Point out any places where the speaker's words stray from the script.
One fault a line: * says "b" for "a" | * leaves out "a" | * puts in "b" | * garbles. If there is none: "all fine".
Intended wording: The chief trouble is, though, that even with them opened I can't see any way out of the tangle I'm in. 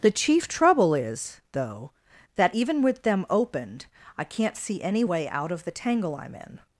all fine